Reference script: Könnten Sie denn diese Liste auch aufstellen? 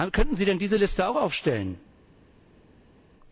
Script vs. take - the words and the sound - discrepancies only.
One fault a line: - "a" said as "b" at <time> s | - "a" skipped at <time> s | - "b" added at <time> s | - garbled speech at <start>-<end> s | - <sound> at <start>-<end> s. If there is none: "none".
none